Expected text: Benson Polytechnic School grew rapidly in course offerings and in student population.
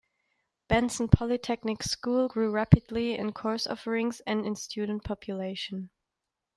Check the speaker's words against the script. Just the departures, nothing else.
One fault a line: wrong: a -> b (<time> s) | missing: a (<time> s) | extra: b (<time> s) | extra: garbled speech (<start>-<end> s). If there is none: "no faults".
no faults